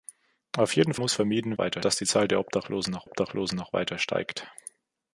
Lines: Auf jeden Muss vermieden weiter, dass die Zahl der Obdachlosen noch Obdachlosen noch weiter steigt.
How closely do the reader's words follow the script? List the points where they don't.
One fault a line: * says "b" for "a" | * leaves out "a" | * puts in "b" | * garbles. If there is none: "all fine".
all fine